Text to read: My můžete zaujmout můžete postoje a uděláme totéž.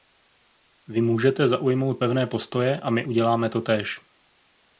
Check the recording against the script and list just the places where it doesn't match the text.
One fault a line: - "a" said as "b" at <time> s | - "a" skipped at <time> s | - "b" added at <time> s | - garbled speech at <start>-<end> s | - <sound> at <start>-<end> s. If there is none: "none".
- "My" said as "Vy" at 0.9 s
- "můžete" said as "pevné" at 2.0 s
- "my" added at 2.9 s